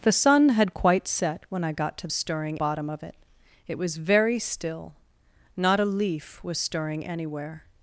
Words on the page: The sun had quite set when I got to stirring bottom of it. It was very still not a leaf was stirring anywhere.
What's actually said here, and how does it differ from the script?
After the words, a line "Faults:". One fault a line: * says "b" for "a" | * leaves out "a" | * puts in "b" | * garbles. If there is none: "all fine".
The sun had quite set when I got to stirring bottom of it. It was very still not a leaf was stirring anywhere.
Faults:
all fine